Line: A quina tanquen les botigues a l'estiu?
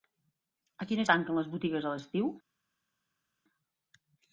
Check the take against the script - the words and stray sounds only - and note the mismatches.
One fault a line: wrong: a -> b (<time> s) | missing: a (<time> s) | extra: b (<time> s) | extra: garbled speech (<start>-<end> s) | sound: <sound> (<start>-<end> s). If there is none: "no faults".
no faults